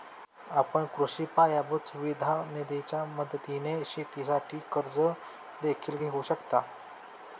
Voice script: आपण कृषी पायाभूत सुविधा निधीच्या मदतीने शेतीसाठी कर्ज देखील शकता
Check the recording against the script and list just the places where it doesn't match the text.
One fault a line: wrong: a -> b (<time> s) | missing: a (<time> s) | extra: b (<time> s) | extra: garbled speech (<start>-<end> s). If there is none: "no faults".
extra: घेऊ (5.9 s)